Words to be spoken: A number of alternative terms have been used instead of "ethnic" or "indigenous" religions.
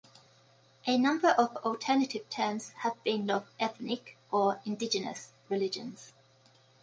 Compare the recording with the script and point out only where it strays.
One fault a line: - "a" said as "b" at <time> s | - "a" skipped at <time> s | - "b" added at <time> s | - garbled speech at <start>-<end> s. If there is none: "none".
- "used instead" skipped at 3.3 s